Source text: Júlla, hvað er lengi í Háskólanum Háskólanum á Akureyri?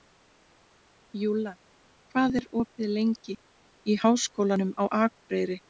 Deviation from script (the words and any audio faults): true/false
true